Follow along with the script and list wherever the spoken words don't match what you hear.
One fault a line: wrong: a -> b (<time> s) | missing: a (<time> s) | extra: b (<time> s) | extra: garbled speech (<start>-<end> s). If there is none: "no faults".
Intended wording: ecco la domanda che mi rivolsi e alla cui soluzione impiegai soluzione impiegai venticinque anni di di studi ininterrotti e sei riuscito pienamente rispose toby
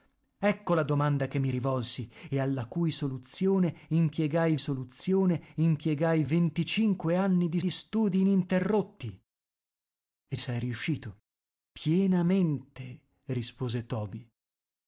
no faults